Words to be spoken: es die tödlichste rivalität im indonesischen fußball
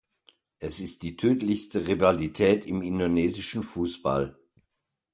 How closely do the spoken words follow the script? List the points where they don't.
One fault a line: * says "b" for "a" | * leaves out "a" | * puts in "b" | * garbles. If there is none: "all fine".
* puts in "ist"